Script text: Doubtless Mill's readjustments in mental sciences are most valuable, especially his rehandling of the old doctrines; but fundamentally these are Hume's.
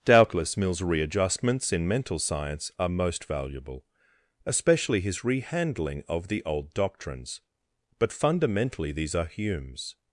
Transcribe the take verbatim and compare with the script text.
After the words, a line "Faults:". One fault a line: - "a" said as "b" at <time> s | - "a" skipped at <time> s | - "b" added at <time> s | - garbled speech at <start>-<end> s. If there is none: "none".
Doubtless Mill's readjustments in mental science are most valuable, especially his rehandling of the old doctrines; but fundamentally these are Hume's.
Faults:
- "sciences" said as "science" at 2.2 s